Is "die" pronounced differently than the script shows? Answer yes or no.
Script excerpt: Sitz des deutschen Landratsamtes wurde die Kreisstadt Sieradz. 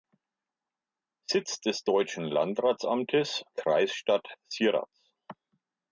yes